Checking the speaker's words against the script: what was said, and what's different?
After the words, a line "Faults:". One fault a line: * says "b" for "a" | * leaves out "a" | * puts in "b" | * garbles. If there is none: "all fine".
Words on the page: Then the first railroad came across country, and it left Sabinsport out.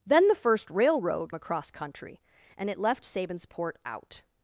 Then the first railroad across country, and it left Sabinsport out.
Faults:
* leaves out "came"